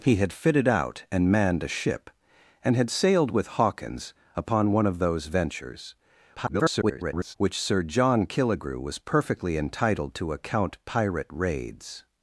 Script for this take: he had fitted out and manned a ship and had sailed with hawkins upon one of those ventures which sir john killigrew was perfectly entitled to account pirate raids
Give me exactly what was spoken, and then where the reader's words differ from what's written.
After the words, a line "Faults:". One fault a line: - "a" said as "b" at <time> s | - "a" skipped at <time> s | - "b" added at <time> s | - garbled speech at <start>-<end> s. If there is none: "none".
he had fitted out and manned a ship and had sailed with hawkins upon one of those ventures [garbled] which sir john killigrew was perfectly entitled to account pirate raids
Faults:
- garbled speech at 6.4-7.4 s